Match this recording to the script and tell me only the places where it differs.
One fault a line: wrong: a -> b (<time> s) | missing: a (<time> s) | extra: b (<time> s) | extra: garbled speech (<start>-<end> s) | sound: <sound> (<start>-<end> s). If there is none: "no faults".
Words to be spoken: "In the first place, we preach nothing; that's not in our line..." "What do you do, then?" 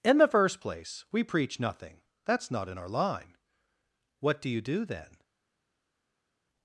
no faults